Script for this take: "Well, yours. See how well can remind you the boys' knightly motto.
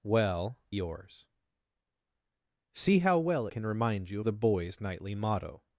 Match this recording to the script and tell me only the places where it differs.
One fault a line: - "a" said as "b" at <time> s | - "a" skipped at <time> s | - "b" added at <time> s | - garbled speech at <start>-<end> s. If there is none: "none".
none